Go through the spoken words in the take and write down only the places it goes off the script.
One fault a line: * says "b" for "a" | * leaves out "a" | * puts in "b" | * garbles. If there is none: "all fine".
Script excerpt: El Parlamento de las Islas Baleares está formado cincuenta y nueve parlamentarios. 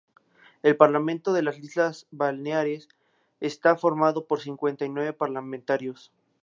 * puts in "por"